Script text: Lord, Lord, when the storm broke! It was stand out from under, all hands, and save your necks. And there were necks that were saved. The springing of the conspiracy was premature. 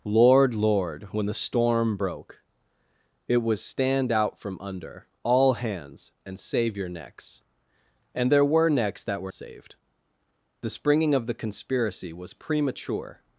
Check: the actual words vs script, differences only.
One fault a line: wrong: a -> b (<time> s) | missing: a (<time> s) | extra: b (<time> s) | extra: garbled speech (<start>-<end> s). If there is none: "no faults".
no faults